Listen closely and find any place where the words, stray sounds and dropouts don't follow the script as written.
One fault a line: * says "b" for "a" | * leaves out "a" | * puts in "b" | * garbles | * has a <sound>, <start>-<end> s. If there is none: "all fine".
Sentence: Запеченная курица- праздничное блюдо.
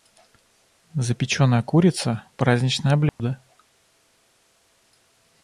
* has a dropout, 3.1-3.2 s